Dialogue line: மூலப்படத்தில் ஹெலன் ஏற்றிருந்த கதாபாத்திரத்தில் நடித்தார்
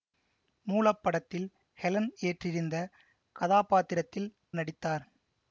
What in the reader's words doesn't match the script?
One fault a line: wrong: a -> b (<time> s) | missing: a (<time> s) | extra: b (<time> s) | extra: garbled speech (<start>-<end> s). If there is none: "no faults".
no faults